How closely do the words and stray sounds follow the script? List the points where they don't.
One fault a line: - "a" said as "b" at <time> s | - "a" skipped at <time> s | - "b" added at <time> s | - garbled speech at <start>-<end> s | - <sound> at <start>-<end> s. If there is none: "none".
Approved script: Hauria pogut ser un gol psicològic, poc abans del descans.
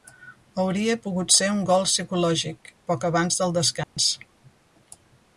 - dropout at 3.8-4.0 s